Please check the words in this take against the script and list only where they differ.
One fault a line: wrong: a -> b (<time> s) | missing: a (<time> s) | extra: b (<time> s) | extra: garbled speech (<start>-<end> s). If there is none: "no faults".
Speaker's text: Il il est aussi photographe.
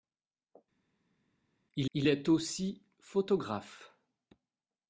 no faults